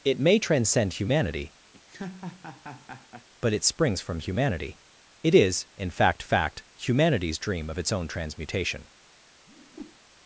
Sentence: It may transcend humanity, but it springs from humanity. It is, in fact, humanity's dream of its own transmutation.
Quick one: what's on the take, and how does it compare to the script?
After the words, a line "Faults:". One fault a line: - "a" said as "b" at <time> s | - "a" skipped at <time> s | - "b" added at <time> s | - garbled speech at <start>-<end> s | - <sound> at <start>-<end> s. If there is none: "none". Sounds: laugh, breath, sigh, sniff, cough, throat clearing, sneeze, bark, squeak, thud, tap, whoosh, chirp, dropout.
It may transcend humanity, but it springs from humanity. It is, in fact fact, humanity's dream of its own transmutation.
Faults:
- laugh at 1.7-3.3 s
- "fact" added at 6.2 s
- whoosh at 9.5-10.0 s